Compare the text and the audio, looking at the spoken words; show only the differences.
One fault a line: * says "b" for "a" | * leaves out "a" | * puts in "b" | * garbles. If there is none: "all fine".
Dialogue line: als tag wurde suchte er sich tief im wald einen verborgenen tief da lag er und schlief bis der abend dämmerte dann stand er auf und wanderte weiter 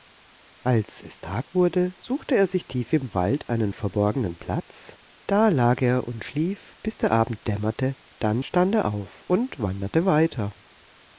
* puts in "es"
* says "platz" for "tief"